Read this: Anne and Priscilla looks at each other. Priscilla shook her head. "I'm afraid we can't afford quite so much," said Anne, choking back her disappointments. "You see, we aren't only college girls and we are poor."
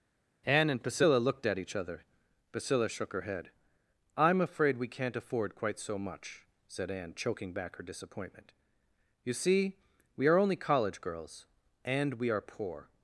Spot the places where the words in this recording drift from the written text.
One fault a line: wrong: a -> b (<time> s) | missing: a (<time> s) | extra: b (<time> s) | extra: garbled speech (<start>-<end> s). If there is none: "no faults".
wrong: looks -> looked (1.2 s)
wrong: disappointments -> disappointment (7.8 s)
wrong: aren't -> are (10.3 s)